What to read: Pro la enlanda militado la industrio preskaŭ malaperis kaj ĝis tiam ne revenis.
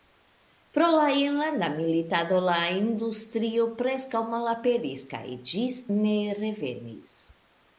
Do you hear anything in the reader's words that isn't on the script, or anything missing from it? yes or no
yes